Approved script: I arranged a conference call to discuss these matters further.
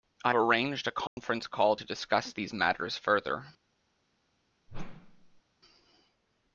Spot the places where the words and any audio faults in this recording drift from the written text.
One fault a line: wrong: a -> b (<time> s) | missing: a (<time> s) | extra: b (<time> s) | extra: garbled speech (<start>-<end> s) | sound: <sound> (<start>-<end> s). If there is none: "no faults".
sound: dropout (1.1-1.2 s)
sound: whoosh (4.7-5.4 s)